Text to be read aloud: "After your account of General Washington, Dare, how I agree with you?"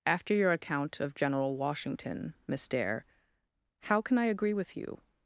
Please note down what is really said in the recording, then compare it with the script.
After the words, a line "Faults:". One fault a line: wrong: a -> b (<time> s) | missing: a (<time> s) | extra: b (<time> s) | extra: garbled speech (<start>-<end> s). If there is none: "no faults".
"After your account of General Washington, Miss Dare, how can I agree with you?"
Faults:
extra: Miss (2.5 s)
extra: can (4.0 s)